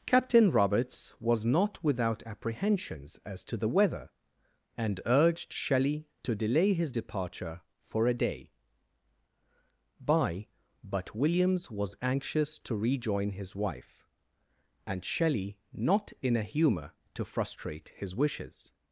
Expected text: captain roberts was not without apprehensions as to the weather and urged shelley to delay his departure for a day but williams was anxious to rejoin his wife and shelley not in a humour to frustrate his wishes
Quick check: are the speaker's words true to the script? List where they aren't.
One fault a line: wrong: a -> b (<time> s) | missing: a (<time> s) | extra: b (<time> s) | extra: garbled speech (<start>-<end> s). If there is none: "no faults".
extra: by (10.0 s)